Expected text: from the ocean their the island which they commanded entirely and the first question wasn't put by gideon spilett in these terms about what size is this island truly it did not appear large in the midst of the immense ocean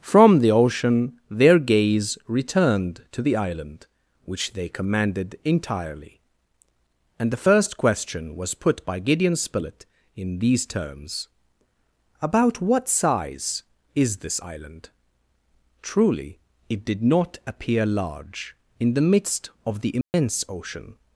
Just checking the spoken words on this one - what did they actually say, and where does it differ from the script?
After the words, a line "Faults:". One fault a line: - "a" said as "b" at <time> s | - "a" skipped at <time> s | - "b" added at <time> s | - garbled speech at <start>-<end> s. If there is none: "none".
from the ocean their gaze returned to the island which they commanded entirely and the first question was put by gideon spilett in these terms about what size is this island truly it did not appear large in the midst of the immense ocean
Faults:
- "gaze returned to" added at 1.6 s
- "wasn't" said as "was" at 8.4 s